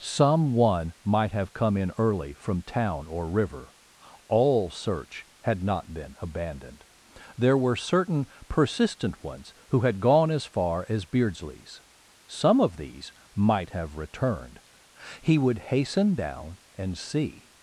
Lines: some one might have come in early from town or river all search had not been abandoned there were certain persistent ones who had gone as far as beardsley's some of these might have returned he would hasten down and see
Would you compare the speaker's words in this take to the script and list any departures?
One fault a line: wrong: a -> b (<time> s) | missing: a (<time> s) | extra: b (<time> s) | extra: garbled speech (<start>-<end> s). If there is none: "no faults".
no faults